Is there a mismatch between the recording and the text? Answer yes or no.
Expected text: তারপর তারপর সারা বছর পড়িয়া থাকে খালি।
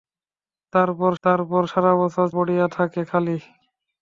no